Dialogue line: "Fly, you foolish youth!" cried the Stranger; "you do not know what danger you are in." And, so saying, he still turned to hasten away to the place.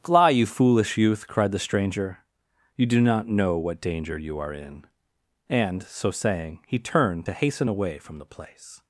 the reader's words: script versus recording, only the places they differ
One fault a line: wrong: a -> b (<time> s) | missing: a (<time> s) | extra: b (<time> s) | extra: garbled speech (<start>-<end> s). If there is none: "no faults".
missing: still (6.8 s)
wrong: to -> from (8.0 s)